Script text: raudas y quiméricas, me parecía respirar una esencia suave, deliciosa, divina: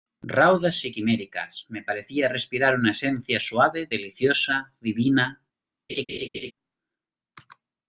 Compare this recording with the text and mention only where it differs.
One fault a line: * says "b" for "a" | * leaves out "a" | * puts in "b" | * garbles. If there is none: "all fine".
all fine